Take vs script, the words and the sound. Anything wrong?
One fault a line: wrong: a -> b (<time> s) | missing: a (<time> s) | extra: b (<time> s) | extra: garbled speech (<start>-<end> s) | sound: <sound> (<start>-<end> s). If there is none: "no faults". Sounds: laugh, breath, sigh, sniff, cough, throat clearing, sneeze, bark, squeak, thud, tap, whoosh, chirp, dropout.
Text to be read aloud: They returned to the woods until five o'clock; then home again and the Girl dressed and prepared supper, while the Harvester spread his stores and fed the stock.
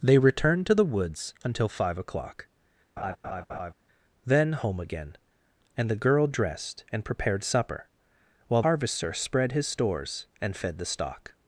sound: laugh (3.0-3.7 s)
missing: the (8.6 s)